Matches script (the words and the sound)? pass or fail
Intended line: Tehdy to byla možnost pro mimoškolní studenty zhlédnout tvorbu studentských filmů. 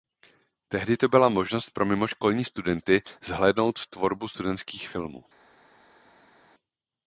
pass